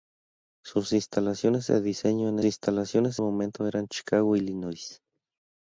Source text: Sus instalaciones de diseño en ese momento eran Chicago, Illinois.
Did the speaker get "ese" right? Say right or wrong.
wrong